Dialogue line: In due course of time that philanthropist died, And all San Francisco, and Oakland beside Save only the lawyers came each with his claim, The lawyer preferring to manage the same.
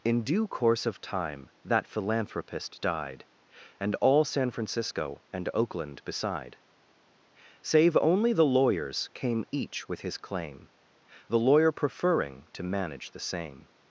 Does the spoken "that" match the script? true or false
true